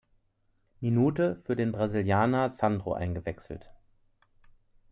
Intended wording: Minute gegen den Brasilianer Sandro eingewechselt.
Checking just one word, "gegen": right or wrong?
wrong